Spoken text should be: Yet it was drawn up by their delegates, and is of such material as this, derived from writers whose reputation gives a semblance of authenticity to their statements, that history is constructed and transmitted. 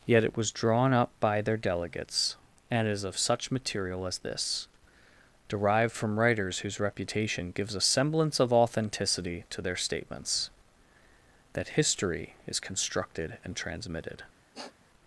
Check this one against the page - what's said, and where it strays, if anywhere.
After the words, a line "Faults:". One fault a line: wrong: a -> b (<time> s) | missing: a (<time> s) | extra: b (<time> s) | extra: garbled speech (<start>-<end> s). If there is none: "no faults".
Yet it was drawn up by their delegates, and is of such material as this, derived from writers whose reputation gives a semblance of authenticity to their statements, that history is constructed and transmitted.
Faults:
no faults